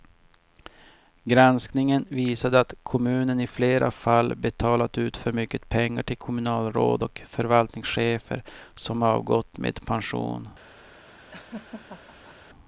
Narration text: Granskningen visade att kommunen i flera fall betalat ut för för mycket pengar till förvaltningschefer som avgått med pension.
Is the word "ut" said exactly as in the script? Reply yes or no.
yes